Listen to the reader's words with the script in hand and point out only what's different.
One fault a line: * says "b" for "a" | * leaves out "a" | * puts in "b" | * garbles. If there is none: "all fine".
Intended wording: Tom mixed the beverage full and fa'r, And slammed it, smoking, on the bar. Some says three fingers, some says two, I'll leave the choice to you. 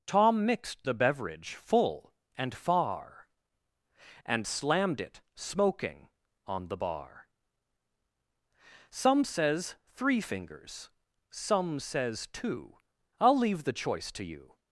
all fine